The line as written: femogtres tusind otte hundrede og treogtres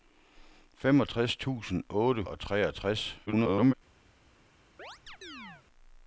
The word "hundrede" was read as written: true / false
false